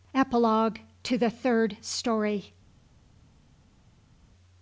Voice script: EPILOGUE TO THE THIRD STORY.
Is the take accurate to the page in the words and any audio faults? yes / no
yes